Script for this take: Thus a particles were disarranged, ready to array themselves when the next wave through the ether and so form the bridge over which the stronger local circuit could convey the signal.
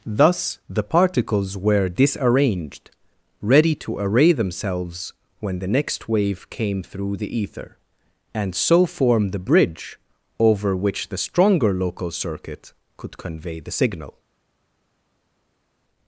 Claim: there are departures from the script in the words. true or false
true